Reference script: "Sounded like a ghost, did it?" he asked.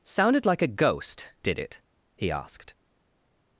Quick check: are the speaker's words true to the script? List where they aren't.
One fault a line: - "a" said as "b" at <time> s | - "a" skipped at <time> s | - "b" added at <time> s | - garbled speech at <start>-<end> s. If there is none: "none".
none